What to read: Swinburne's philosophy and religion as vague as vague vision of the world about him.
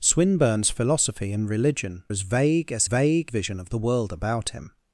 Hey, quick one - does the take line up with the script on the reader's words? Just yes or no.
yes